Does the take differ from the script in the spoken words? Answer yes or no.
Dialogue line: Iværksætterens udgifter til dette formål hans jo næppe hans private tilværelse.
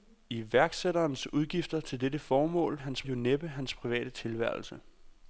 no